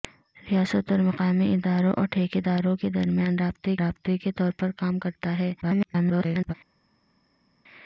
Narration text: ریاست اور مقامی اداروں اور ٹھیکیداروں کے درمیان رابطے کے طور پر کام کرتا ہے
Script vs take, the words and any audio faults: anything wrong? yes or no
yes